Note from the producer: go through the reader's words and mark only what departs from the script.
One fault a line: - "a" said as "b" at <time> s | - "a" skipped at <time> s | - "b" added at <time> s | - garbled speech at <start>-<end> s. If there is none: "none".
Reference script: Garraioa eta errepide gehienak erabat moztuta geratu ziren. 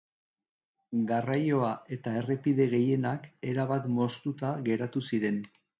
none